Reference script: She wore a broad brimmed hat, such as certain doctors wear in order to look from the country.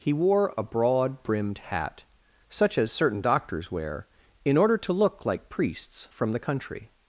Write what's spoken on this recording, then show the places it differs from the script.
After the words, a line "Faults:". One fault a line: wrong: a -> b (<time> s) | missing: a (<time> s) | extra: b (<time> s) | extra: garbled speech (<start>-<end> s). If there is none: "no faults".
He wore a broad brimmed hat, such as certain doctors wear in order to look like priests from the country.
Faults:
wrong: She -> He (0.0 s)
extra: like priests (5.3 s)